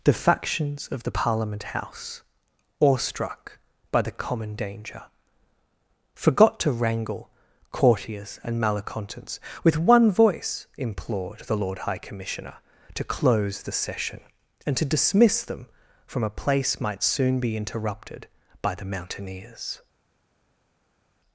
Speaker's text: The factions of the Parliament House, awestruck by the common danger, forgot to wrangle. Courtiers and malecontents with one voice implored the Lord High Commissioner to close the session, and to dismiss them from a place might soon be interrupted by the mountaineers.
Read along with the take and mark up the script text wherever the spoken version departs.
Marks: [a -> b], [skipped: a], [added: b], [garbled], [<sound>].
The factions of the Parliament House, awestruck by the common danger, forgot to wrangle. Courtiers and malecontents with one voice implored the Lord High Commissioner to close the session, and to dismiss them from a place might soon be interrupted by the mountaineers.